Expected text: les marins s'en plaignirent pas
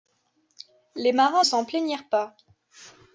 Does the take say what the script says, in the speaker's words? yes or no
yes